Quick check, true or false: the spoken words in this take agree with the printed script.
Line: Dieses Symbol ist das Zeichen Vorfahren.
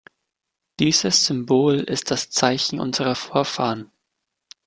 false